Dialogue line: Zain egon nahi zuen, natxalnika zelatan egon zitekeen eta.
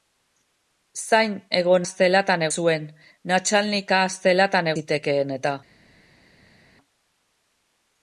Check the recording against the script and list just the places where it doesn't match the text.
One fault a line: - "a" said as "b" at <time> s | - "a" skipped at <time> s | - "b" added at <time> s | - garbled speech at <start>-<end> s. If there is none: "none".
- "nahi" said as "zelatan" at 1.9 s
- "egon" skipped at 4.7 s